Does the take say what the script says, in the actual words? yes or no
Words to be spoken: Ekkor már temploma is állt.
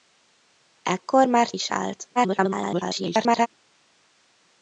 no